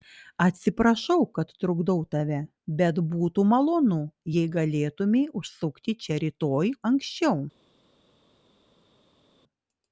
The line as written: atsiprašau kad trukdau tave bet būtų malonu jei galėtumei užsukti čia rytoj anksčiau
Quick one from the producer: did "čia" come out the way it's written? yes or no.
yes